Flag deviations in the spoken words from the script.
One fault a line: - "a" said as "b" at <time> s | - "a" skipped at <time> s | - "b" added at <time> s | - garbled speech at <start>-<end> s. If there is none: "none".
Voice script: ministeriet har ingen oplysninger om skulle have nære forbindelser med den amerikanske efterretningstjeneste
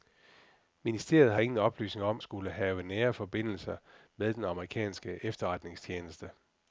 none